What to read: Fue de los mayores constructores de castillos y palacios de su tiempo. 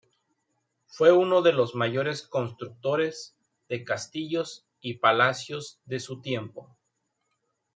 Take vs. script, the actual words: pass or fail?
fail